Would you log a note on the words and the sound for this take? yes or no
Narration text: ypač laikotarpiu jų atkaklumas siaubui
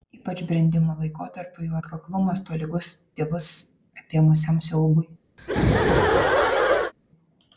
yes